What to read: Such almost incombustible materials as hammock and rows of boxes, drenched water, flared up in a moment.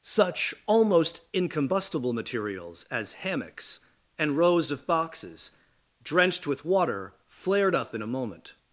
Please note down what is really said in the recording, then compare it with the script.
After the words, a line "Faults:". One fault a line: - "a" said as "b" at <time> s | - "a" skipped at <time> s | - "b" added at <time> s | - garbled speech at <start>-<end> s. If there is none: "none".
Such almost incombustible materials as hammocks and rows of boxes, drenched with water, flared up in a moment.
Faults:
- "hammock" said as "hammocks" at 3.1 s
- "with" added at 6.5 s